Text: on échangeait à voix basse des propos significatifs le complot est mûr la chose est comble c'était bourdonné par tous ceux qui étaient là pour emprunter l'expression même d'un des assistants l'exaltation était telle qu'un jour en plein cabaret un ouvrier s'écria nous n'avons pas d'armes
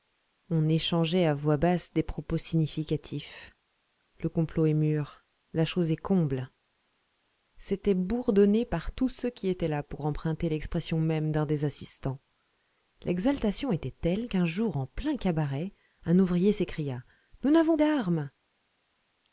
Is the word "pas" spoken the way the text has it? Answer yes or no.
no